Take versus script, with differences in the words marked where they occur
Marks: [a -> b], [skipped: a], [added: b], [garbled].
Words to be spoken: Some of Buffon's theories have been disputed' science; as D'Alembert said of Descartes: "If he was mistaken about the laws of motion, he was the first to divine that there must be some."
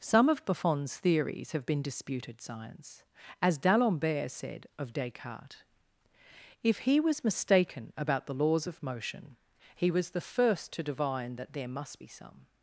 Some of Buffon's theories have been disputed' science; as D'Alembert said of Descartes: "If he was mistaken about the laws of motion, he was the first to divine that there must be some."